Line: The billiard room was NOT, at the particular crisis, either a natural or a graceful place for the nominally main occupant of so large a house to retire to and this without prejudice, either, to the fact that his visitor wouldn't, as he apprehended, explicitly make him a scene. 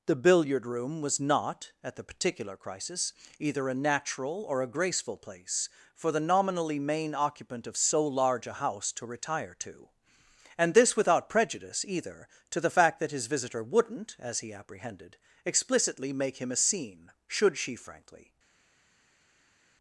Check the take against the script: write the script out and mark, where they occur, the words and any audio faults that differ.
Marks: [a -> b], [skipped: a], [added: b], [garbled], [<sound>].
The billiard room was NOT, at the particular crisis, either a natural or a graceful place for the nominally main occupant of so large a house to retire to and this without prejudice, either, to the fact that his visitor wouldn't, as he apprehended, explicitly make him a scene. [added: Should she frankly]